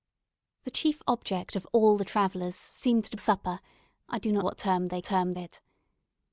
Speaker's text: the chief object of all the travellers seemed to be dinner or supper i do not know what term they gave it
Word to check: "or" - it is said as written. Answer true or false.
false